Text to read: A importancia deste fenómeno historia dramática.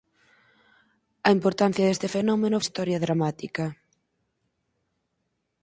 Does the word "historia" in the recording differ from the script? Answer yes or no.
no